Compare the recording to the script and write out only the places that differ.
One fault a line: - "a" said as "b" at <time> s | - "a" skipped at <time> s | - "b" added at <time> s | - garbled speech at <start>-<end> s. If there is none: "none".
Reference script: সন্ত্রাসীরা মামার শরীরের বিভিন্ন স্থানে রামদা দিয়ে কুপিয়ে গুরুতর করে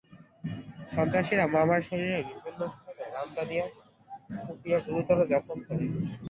- "জখম" added at 5.3 s